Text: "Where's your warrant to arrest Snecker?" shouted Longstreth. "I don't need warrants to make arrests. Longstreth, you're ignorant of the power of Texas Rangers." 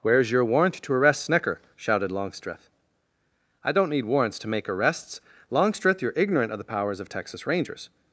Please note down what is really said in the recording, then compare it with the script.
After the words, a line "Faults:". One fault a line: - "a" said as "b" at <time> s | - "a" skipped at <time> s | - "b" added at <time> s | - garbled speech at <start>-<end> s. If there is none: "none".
"Where's your warrant to arrest Snecker?" shouted Longstreth. "I don't need warrants to make arrests. Longstreth, you're ignorant of the powers of Texas Rangers."
Faults:
- "power" said as "powers" at 6.6 s